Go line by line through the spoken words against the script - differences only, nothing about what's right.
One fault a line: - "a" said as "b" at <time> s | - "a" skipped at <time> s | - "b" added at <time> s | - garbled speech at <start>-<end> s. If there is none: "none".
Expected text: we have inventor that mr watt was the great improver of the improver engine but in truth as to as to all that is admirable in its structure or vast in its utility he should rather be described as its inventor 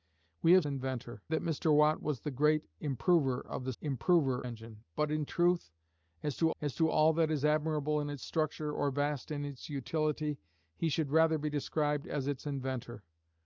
none